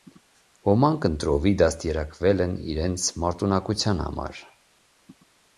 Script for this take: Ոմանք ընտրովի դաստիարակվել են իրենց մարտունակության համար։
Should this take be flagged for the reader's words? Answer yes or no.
no